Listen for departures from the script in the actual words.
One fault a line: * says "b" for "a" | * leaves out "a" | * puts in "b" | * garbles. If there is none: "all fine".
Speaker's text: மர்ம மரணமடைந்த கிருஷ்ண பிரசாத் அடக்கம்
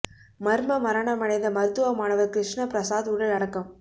* puts in "மருத்துவ மாணவர்"
* puts in "உடல்"